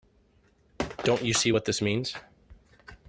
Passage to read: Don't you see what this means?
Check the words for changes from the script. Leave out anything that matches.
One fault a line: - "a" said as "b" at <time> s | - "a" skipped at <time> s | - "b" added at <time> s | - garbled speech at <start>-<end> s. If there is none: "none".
none